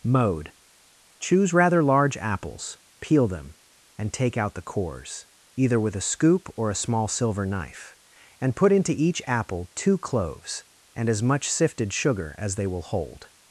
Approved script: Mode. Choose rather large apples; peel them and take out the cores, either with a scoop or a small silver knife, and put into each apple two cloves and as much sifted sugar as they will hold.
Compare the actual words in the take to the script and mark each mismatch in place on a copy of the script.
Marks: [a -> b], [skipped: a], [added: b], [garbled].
Mode. Choose rather large apples; peel them and take out the cores, either with a scoop or a small silver knife, and put into each apple two cloves and as much sifted sugar as they will hold.